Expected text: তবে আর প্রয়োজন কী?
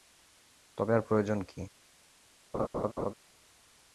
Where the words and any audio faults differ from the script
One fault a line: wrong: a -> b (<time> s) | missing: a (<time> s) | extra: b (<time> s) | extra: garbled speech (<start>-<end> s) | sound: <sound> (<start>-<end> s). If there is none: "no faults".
sound: laugh (2.5-3.1 s)